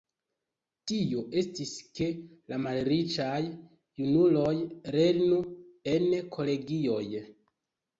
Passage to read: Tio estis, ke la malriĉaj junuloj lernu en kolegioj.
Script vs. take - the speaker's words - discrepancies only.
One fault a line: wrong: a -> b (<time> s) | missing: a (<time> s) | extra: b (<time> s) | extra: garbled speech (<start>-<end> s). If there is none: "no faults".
no faults